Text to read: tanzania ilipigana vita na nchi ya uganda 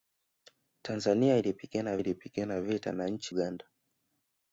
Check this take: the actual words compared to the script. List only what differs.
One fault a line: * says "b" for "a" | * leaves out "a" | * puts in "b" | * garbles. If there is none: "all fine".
* puts in "ilipigana"
* leaves out "ya"